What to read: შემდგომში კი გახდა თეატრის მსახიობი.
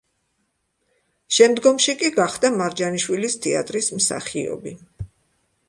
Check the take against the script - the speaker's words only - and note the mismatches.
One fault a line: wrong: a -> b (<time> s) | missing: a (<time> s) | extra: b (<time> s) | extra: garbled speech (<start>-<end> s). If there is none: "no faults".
extra: მარჯანიშვილის (2.6 s)